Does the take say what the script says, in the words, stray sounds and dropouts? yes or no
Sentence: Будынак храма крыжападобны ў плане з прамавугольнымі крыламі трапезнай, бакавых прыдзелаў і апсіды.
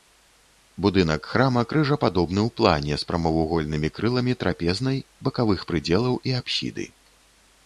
yes